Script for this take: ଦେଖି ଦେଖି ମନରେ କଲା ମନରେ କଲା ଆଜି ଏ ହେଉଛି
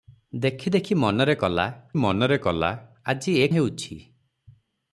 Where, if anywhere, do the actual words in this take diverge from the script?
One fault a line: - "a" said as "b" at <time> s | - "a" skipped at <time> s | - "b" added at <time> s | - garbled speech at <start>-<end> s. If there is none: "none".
none